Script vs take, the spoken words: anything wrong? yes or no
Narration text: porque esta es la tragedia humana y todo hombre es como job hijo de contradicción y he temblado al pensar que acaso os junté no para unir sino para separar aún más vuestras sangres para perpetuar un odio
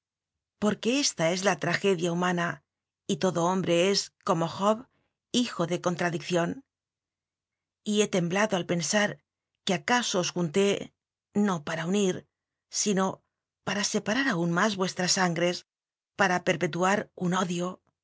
no